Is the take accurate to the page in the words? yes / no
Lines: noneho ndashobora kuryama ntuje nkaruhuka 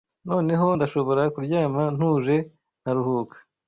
yes